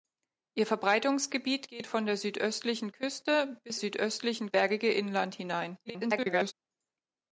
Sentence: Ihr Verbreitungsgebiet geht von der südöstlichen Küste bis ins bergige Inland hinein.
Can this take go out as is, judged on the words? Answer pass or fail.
fail